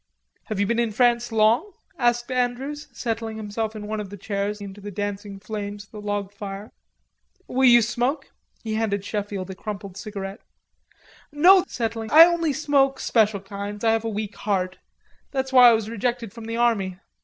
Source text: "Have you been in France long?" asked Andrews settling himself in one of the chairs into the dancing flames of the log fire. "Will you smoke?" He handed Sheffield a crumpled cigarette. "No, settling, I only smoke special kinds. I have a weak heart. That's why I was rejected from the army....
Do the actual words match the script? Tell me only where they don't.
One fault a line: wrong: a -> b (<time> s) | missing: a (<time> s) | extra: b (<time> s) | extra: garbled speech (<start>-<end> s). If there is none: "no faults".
no faults